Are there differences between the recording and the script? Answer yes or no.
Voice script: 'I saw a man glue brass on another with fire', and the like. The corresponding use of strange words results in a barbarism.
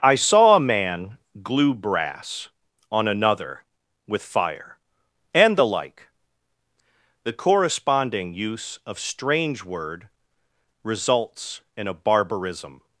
yes